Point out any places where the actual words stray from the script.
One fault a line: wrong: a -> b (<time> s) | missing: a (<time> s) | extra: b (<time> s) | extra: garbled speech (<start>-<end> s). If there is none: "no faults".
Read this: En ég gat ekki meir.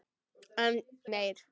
missing: ég gat ekki (0.7 s)